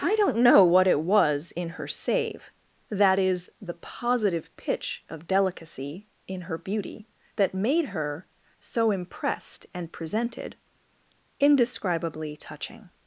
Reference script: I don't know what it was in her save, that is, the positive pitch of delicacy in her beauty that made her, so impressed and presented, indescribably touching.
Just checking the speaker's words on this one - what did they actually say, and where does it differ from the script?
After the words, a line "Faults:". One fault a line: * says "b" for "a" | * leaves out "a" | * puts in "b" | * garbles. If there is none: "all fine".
I don't know what it was in her save, that is, the positive pitch of delicacy in her beauty that made her, so impressed and presented, indescribably touching.
Faults:
all fine